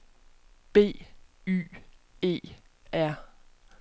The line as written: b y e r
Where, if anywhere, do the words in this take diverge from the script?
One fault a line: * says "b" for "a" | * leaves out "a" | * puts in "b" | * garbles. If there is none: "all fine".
all fine